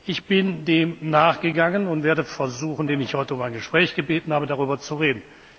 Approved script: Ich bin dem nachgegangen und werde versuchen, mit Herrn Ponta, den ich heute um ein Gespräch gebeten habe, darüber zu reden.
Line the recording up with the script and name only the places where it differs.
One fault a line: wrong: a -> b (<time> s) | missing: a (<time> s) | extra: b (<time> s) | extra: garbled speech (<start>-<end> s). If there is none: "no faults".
missing: mit Herrn Ponta (2.9 s)